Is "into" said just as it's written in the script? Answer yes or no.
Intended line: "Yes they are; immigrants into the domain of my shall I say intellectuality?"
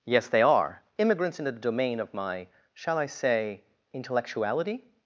no